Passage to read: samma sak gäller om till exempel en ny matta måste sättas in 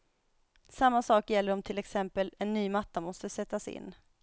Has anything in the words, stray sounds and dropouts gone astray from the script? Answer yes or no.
no